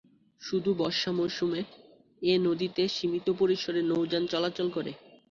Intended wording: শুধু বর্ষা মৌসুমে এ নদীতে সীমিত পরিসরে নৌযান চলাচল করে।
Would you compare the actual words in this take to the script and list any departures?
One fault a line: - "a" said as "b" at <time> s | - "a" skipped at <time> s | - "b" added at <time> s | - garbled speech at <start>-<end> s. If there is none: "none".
none